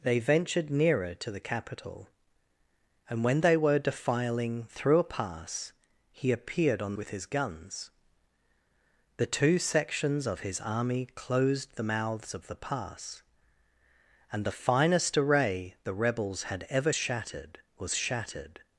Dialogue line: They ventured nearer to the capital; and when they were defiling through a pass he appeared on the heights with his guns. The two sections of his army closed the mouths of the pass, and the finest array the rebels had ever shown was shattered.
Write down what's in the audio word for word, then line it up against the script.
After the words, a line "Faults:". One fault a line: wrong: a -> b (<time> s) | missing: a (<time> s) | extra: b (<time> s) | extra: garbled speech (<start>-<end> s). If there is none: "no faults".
They ventured nearer to the capital; and when they were defiling through a pass he appeared on with his guns. The two sections of his army closed the mouths of the pass, and the finest array the rebels had ever shattered was shattered.
Faults:
missing: the heights (7.0 s)
wrong: shown -> shattered (16.9 s)